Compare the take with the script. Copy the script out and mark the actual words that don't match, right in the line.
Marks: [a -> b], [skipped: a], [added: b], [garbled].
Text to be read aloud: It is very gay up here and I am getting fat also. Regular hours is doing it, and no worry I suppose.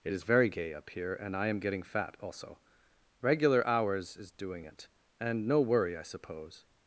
It is very gay up here and I am getting fat also. Regular hours is doing it, and no worry I suppose.